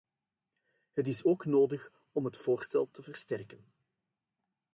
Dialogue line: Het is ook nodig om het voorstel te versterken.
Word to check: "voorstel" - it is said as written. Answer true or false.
true